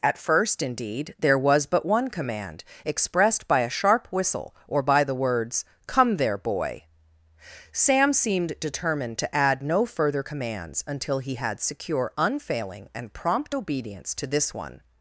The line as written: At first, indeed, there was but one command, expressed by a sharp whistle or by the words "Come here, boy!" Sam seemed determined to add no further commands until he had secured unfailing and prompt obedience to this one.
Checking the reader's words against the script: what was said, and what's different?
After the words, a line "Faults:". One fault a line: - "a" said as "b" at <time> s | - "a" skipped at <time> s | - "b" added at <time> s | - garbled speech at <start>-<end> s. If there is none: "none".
At first, indeed, there was but one command, expressed by a sharp whistle or by the words "Come there, boy!" Sam seemed determined to add no further commands until he had secure unfailing and prompt obedience to this one.
Faults:
- "here" said as "there" at 6.2 s
- "secured" said as "secure" at 11.6 s